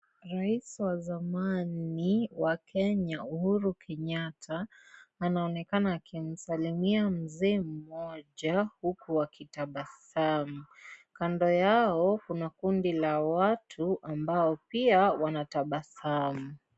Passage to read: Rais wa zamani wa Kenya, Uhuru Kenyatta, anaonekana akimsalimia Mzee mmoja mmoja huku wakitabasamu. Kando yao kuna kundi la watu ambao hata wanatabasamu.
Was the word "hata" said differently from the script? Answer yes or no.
yes